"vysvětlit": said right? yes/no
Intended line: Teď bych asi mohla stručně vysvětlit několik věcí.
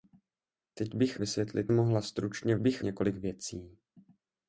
no